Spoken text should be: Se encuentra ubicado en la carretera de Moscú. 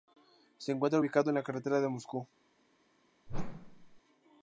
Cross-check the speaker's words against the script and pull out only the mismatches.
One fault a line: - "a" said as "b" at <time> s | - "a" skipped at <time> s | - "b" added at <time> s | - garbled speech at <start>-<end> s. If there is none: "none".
none